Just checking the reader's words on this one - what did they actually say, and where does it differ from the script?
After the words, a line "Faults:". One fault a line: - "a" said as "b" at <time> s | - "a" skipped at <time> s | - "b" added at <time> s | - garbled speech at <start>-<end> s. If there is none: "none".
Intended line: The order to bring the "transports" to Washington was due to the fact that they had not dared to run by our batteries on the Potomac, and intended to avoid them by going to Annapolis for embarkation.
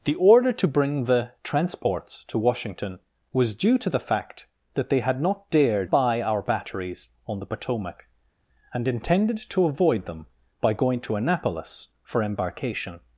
The order to bring the "transports" to Washington was due to the fact that they had not dared by our batteries on the Potomac, and intended to avoid them by going to Annapolis for embarkation.
Faults:
- "to run" skipped at 5.9 s